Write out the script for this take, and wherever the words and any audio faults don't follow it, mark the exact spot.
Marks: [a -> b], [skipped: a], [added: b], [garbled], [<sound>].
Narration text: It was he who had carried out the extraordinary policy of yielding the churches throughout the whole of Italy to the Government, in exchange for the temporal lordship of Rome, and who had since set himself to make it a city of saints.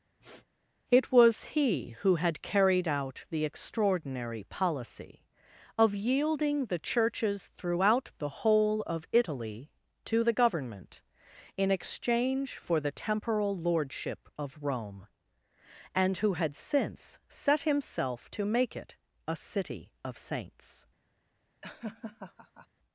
[sniff] It was he who had carried out the extraordinary policy of yielding the churches throughout the whole of Italy to the Government, in exchange for the temporal lordship of Rome, and who had since set himself to make it a city of saints. [laugh]